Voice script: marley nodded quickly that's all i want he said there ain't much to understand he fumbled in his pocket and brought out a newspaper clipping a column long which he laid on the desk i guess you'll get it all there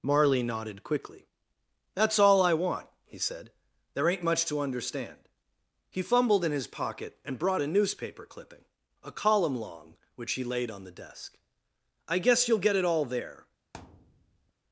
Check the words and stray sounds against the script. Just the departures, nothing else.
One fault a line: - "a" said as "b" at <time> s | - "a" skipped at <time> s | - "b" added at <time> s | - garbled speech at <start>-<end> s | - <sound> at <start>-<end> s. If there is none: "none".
- "out" skipped at 7.6 s
- thud at 13.7-14.5 s